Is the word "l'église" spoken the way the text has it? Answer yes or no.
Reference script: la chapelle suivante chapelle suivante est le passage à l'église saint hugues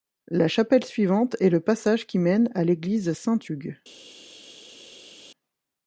yes